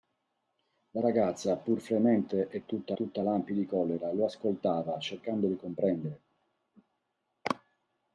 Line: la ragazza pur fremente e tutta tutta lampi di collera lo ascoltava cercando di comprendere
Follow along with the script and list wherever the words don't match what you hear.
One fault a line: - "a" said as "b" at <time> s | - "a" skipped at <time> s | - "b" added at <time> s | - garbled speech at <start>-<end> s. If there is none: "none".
none